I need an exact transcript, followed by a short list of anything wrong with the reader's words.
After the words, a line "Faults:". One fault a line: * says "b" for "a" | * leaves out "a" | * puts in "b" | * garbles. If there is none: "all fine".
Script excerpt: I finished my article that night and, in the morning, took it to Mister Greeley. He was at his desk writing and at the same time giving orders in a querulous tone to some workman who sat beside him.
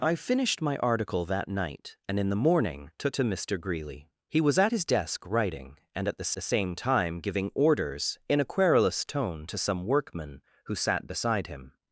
I finished my article that night and, in the morning, took to Mister Greeley. He was at his desk writing and at the the same time giving orders in a querulous tone to some workman who sat beside him.
Faults:
* leaves out "it"
* puts in "the"